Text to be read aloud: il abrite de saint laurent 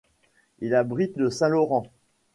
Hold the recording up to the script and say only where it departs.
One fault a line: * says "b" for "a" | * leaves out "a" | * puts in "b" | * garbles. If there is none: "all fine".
all fine